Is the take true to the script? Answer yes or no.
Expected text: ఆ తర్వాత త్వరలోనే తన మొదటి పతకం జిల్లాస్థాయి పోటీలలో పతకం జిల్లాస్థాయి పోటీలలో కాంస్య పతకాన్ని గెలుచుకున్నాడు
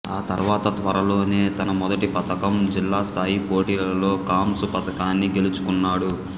no